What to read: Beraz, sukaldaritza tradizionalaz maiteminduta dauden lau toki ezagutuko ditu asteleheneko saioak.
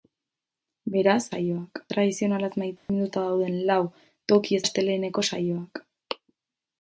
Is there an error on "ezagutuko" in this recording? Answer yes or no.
yes